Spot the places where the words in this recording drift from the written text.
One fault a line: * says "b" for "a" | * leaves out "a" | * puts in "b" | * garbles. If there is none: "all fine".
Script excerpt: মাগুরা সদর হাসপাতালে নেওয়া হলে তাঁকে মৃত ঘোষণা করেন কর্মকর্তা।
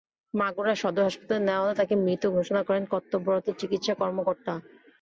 * puts in "কর্তব্যরত চিকিৎসা"